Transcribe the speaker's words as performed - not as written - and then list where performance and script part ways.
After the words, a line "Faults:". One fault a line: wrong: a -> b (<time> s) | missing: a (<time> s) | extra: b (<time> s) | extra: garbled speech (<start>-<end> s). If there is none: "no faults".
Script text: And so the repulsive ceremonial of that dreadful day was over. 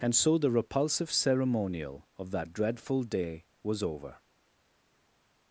And so the repulsive ceremonial of that dreadful day was over.
Faults:
no faults